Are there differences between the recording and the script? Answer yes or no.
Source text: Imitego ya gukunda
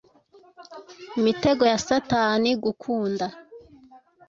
yes